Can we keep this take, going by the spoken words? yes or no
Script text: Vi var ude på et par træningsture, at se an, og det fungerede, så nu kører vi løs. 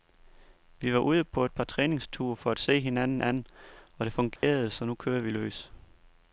no